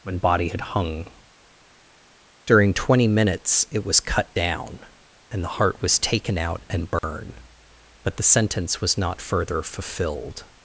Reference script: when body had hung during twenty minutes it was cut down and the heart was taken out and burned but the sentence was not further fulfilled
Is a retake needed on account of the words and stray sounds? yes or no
yes